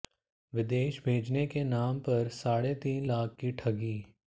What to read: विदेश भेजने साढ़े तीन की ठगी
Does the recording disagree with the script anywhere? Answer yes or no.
yes